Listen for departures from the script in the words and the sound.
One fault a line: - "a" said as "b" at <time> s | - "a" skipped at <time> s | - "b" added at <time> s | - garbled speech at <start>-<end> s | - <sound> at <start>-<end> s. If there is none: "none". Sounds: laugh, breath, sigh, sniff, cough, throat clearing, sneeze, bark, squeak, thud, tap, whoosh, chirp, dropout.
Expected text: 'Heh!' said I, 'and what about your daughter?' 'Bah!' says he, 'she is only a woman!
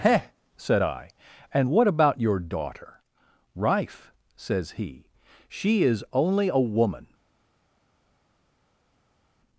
- "Bah" said as "Rife" at 3.6 s